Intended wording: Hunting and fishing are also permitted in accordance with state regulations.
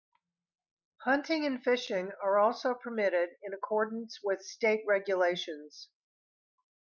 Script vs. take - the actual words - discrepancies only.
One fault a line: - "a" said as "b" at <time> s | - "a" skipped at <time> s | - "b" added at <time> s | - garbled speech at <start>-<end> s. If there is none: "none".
none